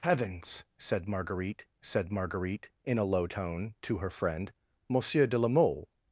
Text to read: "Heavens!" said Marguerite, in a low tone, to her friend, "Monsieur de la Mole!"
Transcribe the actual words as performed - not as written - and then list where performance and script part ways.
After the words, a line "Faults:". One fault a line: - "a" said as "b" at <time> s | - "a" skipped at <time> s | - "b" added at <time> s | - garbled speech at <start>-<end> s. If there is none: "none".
"Heavens!" said Marguerite said Marguerite, in a low tone, to her friend, "Monsieur de la Mole!"
Faults:
- "said Marguerite" added at 1.8 s